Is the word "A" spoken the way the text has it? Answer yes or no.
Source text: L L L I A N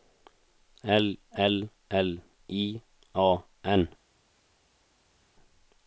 yes